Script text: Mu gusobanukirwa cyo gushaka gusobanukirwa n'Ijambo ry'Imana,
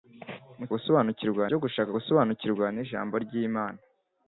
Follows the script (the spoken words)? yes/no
yes